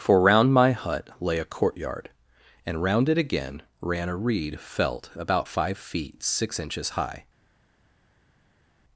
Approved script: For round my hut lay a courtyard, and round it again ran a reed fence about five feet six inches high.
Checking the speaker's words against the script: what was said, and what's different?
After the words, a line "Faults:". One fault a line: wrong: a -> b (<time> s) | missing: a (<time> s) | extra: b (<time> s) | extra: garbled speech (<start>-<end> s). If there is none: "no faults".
For round my hut lay a courtyard, and round it again ran a reed felt about five feet six inches high.
Faults:
wrong: fence -> felt (4.6 s)